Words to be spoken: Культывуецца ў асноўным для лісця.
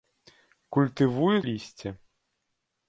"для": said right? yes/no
no